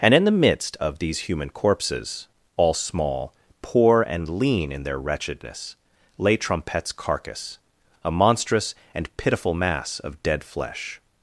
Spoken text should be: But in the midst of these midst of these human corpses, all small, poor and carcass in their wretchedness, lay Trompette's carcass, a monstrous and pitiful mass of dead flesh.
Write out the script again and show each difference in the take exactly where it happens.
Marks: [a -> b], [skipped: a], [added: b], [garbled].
[But -> And] in the midst of these [skipped: midst of these] human corpses, all small, poor and [carcass -> lean] in their wretchedness, lay Trompette's carcass, a monstrous and pitiful mass of dead flesh.